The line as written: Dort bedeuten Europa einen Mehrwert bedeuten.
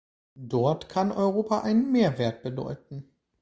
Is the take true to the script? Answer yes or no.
no